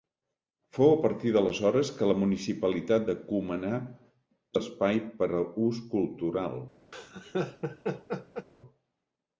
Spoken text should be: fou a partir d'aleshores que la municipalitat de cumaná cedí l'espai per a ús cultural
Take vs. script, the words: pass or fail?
fail